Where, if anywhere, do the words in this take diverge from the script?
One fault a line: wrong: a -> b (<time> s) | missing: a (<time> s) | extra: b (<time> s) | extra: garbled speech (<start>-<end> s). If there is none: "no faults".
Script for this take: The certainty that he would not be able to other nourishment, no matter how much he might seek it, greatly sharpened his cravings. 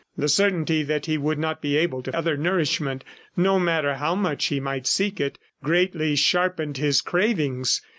no faults